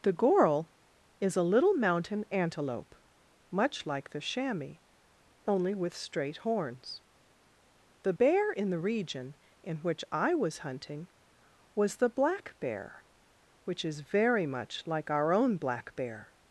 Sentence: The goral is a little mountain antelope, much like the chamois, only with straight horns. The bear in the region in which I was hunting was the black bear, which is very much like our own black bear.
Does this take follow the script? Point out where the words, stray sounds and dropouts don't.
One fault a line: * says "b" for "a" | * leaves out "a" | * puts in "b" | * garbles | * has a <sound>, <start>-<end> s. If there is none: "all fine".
all fine